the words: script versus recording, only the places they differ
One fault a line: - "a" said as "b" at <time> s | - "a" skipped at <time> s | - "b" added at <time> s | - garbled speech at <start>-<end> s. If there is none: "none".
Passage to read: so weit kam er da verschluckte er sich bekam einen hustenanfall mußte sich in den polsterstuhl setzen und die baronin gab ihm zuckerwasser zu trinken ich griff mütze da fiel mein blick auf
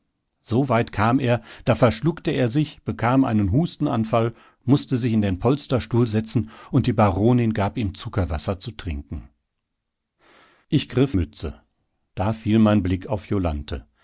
none